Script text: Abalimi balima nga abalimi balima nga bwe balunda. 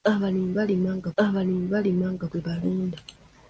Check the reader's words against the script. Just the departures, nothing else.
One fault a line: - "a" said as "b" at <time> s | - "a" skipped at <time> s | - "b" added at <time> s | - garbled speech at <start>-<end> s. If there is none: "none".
none